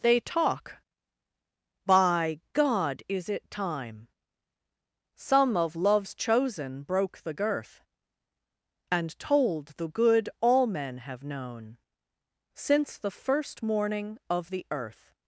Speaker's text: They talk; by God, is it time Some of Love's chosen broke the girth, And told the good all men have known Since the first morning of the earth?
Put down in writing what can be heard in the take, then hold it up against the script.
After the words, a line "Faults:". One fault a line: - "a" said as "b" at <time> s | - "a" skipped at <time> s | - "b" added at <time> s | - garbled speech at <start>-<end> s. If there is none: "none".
They talk; by God, is it time Some of Love's chosen broke the girth, And told the good all men have known Since the first morning of the earth?
Faults:
none